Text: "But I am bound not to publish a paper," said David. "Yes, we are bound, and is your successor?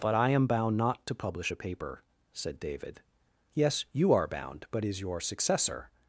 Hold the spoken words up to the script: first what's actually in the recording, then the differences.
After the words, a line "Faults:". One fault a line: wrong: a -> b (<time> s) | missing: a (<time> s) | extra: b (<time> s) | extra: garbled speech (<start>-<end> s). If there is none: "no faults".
"But I am bound not to publish a paper," said David. "Yes, you are bound, but is your successor?
Faults:
wrong: we -> you (3.9 s)
wrong: and -> but (4.7 s)